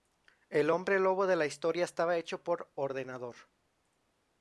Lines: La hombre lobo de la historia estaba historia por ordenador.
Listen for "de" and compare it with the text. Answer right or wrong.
right